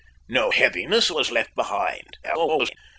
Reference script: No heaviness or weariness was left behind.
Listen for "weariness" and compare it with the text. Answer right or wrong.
wrong